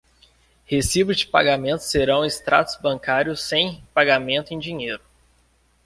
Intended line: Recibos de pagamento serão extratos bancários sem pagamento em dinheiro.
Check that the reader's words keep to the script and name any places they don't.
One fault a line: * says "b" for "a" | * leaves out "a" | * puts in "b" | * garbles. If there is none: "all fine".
all fine